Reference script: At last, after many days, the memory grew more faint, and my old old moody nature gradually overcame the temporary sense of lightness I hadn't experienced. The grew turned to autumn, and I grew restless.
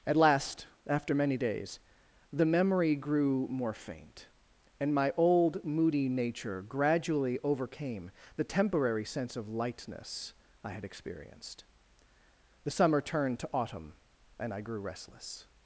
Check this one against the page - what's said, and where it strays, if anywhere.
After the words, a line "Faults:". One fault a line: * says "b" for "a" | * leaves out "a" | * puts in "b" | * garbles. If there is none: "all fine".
At last, after many days, the memory grew more faint, and my old moody nature gradually overcame the temporary sense of lightness I had experienced. The summer turned to autumn, and I grew restless.
Faults:
* leaves out "old"
* says "had" for "hadn't"
* says "summer" for "grew"